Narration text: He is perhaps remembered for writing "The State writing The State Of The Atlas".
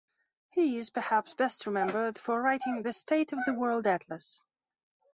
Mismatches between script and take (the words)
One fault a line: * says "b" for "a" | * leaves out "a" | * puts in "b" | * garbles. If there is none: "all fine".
* puts in "best"
* says "Of" for "writing"
* says "World" for "State Of The"